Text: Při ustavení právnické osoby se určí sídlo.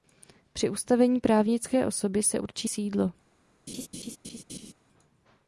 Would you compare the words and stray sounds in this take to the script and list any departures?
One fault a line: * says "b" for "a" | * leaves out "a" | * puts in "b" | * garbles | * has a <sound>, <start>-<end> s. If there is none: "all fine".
* has a laugh, 3.7-4.7 s